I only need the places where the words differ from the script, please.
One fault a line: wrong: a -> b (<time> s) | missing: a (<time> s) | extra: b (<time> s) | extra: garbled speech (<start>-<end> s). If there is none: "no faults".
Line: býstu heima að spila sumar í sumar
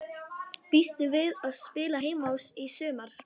wrong: heima -> við (1.1 s)
wrong: sumar -> heima (2.0 s)